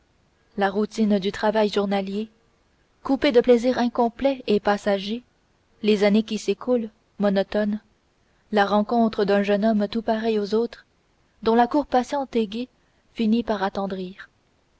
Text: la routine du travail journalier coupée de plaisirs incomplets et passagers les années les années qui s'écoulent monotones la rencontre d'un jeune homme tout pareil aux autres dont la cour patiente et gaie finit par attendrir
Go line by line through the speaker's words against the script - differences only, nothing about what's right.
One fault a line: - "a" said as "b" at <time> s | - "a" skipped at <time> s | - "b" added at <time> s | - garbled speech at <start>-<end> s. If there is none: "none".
- "les années" skipped at 6.2 s